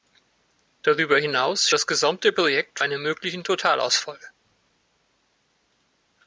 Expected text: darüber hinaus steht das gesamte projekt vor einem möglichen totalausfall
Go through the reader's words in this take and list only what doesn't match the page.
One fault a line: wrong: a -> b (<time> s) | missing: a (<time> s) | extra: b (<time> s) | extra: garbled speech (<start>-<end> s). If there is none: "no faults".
missing: steht (1.7 s)
missing: vor (2.8 s)